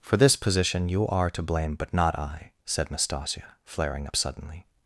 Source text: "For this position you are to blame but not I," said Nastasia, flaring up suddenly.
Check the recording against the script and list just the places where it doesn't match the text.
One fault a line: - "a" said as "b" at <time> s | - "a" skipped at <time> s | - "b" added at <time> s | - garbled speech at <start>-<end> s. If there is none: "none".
none